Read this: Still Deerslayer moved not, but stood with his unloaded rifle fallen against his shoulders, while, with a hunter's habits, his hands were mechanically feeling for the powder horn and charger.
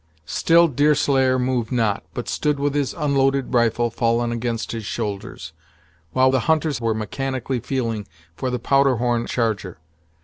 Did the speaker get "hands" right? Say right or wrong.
wrong